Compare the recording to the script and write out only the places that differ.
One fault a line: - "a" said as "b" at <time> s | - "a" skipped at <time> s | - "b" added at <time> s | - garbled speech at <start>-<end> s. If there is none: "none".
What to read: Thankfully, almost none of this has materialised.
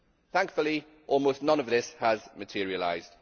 none